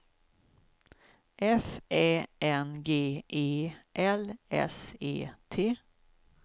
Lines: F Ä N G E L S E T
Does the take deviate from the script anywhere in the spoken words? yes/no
no